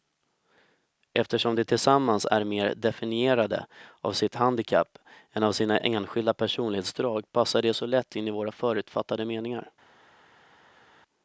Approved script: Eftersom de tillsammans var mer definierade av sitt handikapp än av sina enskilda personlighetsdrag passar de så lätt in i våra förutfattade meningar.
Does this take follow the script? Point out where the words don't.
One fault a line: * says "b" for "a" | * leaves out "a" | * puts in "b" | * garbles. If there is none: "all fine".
* says "är" for "var"